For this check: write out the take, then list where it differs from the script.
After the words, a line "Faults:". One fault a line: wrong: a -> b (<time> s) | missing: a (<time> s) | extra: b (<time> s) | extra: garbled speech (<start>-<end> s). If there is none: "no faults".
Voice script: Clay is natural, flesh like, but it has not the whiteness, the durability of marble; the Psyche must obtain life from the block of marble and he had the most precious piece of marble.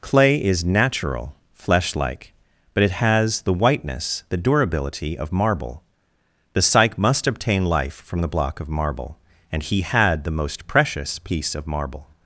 Clay is natural, flesh like, but it has the whiteness, the durability of marble; the Psyche must obtain life from the block of marble and he had the most precious piece of marble.
Faults:
missing: not (3.4 s)